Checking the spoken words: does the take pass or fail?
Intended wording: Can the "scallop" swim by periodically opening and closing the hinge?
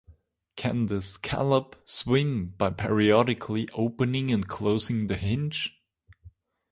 pass